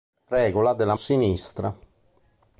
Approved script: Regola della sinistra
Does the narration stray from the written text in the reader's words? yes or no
no